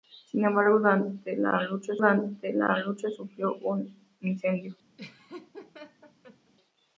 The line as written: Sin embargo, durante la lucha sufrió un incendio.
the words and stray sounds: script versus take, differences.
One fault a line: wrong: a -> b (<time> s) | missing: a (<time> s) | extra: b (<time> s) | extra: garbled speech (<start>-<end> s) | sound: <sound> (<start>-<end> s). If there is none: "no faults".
extra: durante la lucha (2.0 s)
sound: laugh (5.0-6.5 s)